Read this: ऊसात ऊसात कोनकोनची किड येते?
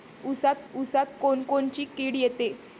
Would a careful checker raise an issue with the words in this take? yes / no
no